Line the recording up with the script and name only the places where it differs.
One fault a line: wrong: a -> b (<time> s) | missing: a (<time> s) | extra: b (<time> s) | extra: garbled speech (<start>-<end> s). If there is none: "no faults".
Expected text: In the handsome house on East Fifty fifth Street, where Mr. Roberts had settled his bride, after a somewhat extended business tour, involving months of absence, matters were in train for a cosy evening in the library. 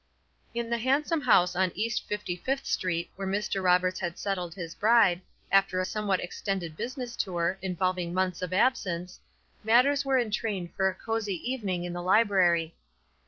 no faults